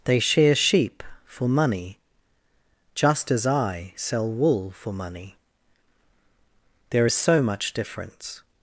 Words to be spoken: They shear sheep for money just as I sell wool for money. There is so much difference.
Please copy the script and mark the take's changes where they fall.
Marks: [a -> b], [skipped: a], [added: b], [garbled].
They shear sheep for money just as I sell wool for money. There is so much difference.